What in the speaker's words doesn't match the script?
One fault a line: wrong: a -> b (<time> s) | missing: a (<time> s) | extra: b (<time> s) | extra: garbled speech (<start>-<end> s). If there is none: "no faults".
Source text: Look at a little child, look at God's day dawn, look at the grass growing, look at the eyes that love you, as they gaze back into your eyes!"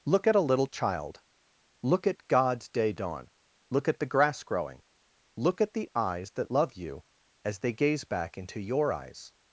no faults